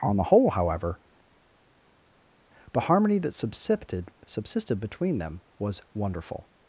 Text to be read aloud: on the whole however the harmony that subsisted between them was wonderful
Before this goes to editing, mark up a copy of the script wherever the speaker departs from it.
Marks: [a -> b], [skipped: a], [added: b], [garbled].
on the whole however the harmony that subsisted [added: subsisted] between them was wonderful